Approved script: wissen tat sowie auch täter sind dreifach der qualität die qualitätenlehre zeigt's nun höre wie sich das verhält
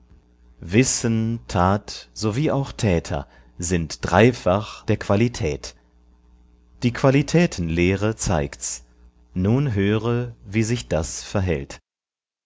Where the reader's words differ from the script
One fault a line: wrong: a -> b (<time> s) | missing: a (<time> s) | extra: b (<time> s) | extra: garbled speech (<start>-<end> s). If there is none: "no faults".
no faults